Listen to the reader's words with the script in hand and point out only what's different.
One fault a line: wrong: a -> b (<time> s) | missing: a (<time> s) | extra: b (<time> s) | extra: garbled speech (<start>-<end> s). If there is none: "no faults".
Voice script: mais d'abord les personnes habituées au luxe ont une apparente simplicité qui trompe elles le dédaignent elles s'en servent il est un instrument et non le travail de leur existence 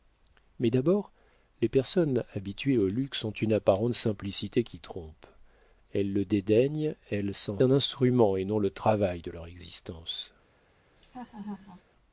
missing: servent il est (7.6 s)